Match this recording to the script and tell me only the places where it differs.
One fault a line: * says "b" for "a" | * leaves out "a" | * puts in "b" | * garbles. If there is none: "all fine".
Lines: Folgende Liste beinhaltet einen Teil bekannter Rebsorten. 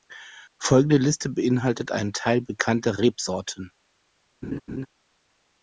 all fine